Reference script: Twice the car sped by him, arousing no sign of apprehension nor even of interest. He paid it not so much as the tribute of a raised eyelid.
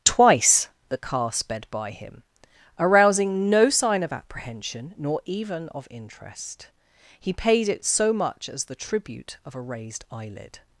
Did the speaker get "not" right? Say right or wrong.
wrong